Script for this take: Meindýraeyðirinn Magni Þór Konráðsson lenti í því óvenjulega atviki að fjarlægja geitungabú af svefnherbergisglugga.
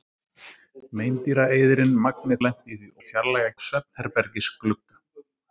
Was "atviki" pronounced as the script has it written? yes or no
no